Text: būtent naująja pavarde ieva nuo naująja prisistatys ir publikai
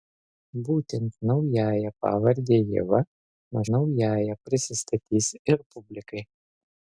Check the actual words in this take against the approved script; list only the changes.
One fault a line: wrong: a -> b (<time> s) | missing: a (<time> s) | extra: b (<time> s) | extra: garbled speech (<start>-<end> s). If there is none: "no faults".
no faults